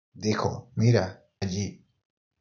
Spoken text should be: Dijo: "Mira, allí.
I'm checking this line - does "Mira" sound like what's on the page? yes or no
yes